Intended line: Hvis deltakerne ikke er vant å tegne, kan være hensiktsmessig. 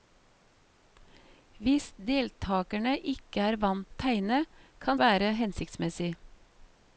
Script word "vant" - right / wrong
right